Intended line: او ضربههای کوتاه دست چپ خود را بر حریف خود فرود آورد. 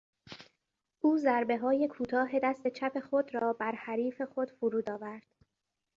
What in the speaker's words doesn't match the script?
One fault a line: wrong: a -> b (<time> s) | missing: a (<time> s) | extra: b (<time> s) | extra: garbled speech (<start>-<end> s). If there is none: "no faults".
no faults